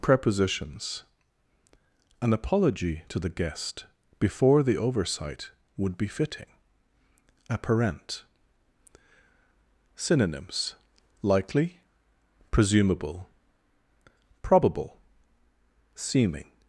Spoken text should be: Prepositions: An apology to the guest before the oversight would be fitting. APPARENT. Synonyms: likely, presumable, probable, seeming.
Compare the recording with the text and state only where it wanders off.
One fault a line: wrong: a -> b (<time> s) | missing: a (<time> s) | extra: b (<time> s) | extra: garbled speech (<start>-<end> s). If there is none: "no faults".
no faults